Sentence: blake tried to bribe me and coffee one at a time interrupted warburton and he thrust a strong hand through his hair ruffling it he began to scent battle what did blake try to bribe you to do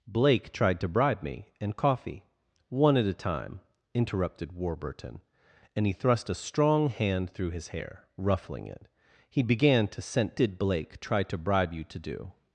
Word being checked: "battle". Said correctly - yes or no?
no